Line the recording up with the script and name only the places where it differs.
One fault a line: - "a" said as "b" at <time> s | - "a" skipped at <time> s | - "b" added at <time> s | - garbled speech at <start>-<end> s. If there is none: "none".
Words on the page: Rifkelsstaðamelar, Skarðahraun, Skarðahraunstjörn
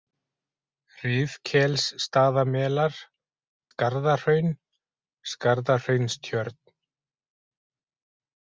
none